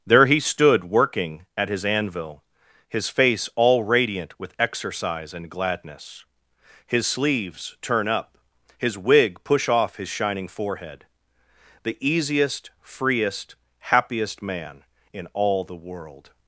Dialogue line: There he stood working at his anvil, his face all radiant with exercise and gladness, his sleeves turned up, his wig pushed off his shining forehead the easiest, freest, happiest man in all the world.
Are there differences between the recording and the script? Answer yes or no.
yes